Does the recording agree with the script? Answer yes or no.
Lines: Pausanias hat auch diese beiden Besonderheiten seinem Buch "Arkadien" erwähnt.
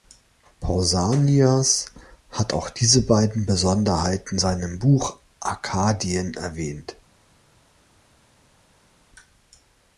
yes